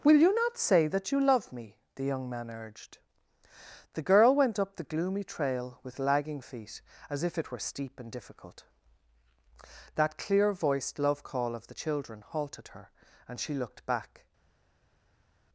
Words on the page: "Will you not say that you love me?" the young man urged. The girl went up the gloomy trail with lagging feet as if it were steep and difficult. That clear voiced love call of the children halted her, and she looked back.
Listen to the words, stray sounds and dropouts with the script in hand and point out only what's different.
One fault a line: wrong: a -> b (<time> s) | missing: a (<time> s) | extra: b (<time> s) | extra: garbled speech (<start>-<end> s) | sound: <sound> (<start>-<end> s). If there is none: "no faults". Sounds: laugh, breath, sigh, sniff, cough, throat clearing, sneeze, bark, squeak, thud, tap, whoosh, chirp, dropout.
no faults